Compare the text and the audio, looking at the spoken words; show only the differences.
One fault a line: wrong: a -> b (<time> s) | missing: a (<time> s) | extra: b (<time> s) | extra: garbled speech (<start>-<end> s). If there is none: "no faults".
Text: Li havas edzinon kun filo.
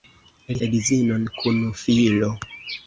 missing: havas (0.6 s)